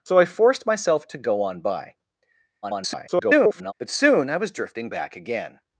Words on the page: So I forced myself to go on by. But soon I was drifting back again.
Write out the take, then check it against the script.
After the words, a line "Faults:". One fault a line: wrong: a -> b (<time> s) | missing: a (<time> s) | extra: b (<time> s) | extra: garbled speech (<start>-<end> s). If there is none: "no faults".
So I forced myself to go on by. [garbled] But soon I was drifting back again.
Faults:
extra: garbled speech (2.6-3.7 s)